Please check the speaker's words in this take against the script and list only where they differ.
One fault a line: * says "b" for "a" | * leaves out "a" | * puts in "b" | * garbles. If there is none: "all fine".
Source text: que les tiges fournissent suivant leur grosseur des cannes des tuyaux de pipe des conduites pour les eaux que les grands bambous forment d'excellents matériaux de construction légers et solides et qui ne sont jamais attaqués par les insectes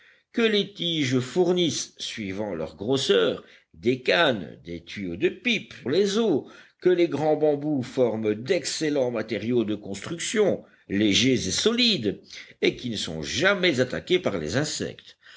* leaves out "des conduites pour"